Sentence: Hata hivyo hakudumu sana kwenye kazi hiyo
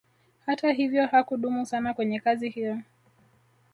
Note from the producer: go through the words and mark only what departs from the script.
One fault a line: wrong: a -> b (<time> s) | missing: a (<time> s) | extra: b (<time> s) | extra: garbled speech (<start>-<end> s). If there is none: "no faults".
no faults